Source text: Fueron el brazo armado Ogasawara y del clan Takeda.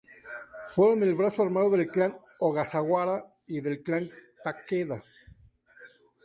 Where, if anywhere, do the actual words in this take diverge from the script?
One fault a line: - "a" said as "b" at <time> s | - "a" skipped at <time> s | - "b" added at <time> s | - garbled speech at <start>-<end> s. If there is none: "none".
- "del clan" added at 1.7 s